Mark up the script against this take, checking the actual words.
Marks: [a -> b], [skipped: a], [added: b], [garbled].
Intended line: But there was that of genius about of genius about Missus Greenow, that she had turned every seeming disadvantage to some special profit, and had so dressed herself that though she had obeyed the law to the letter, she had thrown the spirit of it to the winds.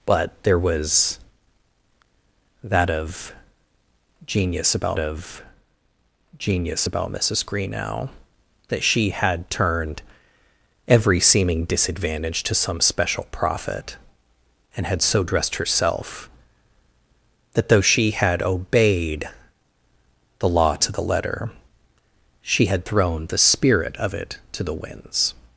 But there was that of genius about of genius about Missus Greenow, that she had turned every seeming disadvantage to some special profit, and had so dressed herself that though she had obeyed the law to the letter, she had thrown the spirit of it to the winds.